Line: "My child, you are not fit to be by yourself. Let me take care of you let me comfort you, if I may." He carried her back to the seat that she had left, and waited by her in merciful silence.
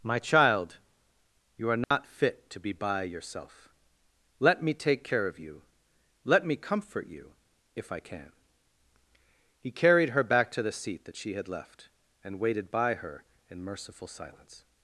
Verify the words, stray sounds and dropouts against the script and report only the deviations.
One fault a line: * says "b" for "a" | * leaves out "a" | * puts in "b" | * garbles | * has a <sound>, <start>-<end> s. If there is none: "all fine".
* has a dropout, 1.8-1.9 s
* says "can" for "may"